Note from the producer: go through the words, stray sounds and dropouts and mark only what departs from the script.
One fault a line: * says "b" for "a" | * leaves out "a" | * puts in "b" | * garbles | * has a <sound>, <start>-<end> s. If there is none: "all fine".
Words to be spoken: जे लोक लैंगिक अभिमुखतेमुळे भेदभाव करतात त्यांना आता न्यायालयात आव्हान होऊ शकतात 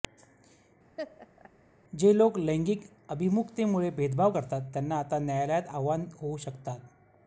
* has a laugh, 1.0-1.5 s